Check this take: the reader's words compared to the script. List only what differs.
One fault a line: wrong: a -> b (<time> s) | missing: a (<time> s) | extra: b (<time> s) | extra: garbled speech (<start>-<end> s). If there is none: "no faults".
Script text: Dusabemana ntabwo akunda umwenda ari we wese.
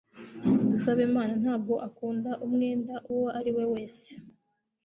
extra: uwo (3.1 s)